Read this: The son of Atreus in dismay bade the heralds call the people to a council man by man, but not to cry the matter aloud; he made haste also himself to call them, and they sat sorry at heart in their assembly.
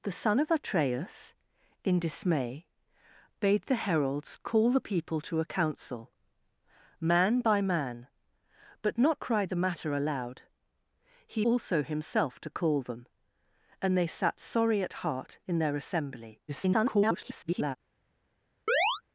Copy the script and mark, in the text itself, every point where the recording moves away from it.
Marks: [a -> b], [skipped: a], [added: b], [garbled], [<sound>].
The son of Atreus in dismay bade the heralds call the people to a council man by man, but not [skipped: to] cry the matter aloud; he [skipped: made haste] also himself to call them, and they sat sorry at heart in their assembly. [garbled] [chirp]